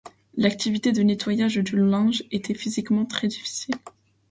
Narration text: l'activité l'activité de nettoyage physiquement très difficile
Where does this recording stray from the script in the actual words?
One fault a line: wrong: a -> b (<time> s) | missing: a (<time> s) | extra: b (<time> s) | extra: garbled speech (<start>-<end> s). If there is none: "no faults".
missing: l'activité (0.9 s)
extra: du linge était (1.6 s)